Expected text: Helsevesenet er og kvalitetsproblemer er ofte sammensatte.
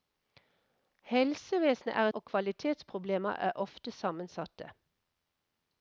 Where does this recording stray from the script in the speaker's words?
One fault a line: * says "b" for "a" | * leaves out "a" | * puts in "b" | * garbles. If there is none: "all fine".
all fine